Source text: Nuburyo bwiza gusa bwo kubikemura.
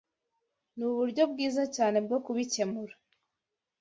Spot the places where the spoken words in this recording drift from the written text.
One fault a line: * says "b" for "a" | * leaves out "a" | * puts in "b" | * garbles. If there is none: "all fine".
* says "cyane" for "gusa"